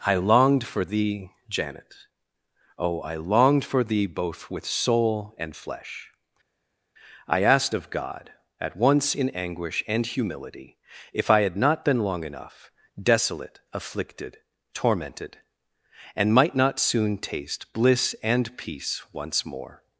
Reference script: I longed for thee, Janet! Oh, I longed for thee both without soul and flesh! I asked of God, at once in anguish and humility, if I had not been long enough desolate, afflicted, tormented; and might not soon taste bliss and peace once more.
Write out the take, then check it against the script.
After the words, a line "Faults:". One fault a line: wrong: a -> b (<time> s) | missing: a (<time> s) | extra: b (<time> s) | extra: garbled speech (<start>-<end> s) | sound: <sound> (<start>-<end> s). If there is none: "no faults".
I longed for thee, Janet! Oh, I longed for thee both with soul and flesh! I asked of God, at once in anguish and humility, if I had not been long enough desolate, afflicted, tormented; and might not soon taste bliss and peace once more.
Faults:
wrong: without -> with (4.5 s)